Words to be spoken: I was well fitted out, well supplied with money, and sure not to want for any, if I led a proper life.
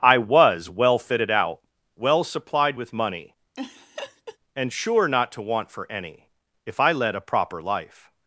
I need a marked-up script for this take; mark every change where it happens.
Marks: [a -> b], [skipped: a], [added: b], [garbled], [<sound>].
I was well fitted out, well supplied with money, [laugh] and sure not to want for any, if I led a proper life.